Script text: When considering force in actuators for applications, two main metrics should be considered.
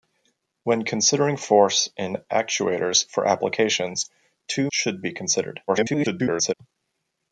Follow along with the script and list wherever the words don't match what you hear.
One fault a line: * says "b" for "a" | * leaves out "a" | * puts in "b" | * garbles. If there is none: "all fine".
* leaves out "main metrics"
* garbles